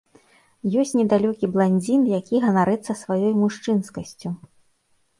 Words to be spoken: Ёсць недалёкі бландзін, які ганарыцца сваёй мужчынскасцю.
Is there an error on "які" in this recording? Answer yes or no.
no